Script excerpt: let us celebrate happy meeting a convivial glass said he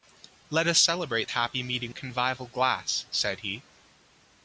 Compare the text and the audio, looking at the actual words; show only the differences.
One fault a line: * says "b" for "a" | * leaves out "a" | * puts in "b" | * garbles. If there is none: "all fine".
all fine